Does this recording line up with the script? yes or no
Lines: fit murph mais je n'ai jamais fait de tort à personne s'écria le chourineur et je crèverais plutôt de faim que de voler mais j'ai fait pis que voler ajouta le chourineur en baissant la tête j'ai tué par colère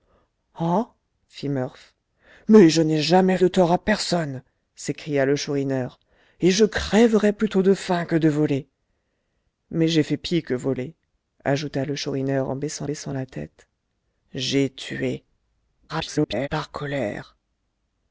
no